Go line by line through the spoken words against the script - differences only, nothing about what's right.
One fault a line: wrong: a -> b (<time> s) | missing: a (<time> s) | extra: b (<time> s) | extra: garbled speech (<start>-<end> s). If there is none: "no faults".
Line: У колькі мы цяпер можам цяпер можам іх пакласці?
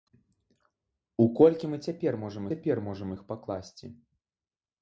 no faults